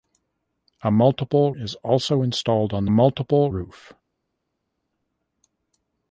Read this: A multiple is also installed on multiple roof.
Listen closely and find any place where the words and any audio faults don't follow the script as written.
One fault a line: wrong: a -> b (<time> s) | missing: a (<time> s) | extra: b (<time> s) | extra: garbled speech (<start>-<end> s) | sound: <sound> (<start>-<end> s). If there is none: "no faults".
no faults